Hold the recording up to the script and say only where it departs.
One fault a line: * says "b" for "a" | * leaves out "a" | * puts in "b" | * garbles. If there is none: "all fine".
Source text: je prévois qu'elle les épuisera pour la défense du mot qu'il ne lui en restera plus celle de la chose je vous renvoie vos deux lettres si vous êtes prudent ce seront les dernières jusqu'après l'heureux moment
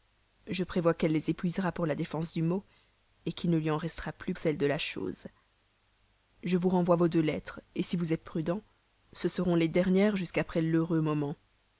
all fine